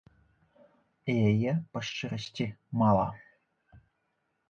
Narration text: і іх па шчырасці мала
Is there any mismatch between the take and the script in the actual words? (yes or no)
yes